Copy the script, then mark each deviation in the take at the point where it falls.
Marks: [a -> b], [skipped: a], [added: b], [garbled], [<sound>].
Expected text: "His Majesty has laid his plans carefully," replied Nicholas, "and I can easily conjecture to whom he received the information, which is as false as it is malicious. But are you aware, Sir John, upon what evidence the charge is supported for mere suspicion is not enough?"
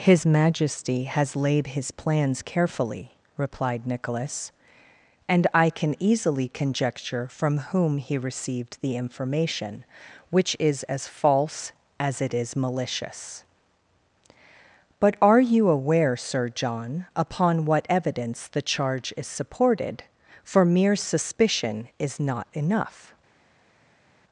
"His Majesty has laid his plans carefully," replied Nicholas, "and I can easily conjecture [to -> from] whom he received the information, which is as false as it is malicious. But are you aware, Sir John, upon what evidence the charge is supported for mere suspicion is not enough?"